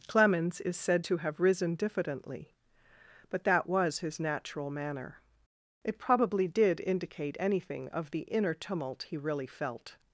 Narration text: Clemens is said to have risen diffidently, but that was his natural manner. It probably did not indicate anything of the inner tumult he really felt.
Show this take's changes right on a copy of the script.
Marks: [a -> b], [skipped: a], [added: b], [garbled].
Clemens is said to have risen diffidently, but that was his natural manner. It probably did [skipped: not] indicate anything of the inner tumult he really felt.